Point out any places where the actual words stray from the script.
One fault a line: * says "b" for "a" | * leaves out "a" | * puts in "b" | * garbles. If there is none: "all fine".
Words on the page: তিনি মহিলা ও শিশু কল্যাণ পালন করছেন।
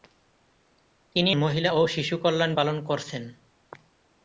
all fine